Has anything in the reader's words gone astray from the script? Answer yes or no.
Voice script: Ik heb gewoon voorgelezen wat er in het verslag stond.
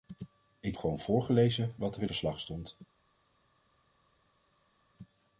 yes